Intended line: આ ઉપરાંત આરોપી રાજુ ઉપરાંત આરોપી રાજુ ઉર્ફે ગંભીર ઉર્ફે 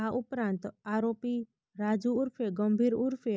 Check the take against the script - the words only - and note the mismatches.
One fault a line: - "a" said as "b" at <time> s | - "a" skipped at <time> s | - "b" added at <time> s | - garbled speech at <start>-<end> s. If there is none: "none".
- "ઉપરાંત આરોપી રાજુ" skipped at 2.1 s